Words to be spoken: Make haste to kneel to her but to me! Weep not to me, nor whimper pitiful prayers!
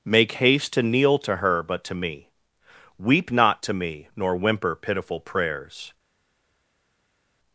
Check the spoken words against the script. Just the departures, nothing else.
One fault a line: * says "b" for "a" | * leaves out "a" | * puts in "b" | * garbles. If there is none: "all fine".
all fine